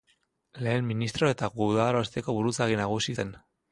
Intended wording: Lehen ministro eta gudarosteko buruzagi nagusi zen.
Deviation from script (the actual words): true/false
false